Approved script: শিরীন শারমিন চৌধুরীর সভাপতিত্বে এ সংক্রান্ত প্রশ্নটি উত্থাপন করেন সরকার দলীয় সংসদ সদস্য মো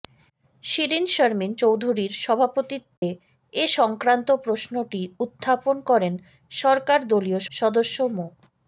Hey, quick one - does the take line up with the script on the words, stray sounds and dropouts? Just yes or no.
no